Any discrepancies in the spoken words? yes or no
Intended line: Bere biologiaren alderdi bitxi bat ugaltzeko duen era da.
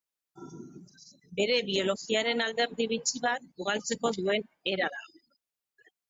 no